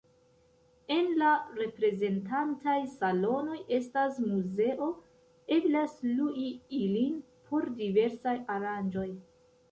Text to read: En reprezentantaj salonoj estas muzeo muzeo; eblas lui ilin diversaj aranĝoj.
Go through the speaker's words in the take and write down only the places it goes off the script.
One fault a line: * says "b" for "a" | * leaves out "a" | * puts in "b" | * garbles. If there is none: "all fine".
* puts in "la"
* leaves out "muzeo"
* puts in "por"